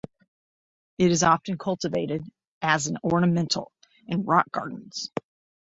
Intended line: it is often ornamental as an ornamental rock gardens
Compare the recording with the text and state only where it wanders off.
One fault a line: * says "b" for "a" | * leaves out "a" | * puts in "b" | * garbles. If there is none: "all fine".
* says "cultivated" for "ornamental"
* puts in "in"